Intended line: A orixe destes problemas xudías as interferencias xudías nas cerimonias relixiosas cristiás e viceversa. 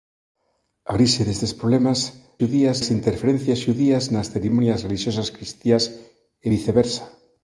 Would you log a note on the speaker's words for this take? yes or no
no